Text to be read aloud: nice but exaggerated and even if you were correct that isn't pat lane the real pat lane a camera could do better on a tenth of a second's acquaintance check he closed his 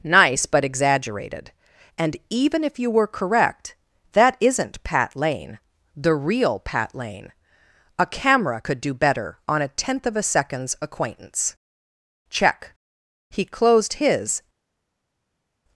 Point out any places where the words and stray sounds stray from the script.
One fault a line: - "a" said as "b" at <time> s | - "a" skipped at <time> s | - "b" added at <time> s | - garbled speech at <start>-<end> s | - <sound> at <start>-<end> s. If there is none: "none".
none